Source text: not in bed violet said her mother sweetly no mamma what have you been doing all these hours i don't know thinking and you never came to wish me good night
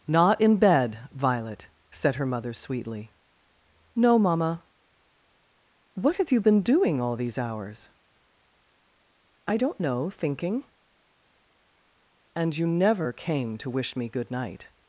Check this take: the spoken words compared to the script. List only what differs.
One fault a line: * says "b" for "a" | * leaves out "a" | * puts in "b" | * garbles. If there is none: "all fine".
all fine